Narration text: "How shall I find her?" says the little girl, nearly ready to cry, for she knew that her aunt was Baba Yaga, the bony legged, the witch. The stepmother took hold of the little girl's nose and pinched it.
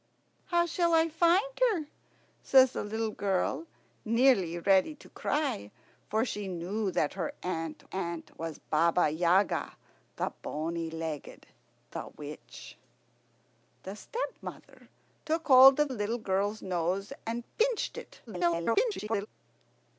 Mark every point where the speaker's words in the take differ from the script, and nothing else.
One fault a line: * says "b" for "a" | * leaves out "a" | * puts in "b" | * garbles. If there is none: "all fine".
* puts in "aunt"
* leaves out "the"
* garbles